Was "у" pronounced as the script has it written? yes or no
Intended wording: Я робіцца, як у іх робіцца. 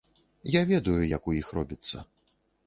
yes